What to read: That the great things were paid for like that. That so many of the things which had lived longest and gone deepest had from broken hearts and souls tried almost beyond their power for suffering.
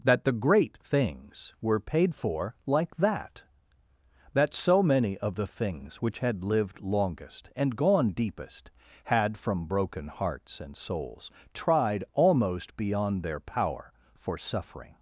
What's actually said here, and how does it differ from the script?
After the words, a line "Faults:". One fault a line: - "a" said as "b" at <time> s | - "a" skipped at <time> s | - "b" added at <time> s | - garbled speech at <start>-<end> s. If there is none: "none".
That the great things were paid for like that. That so many of the things which had lived longest and gone deepest had from broken hearts and souls tried almost beyond their power for suffering.
Faults:
none